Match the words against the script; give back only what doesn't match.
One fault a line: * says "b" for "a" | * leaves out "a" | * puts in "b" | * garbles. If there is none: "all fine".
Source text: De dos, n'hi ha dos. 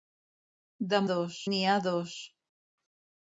all fine